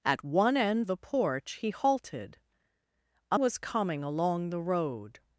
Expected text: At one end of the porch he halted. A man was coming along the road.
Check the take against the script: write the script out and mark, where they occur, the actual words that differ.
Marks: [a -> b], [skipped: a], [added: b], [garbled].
At one end [skipped: of] the porch he halted. A [skipped: man] was coming along the road.